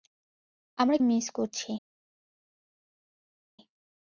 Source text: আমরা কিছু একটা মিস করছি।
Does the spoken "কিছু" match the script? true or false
false